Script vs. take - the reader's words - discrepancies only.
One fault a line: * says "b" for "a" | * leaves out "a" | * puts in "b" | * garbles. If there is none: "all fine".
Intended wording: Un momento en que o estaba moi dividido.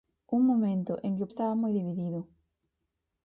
all fine